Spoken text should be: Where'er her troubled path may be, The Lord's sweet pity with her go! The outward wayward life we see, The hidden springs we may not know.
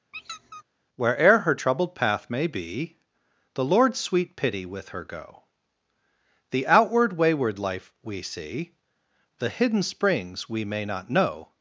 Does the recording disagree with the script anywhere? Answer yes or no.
no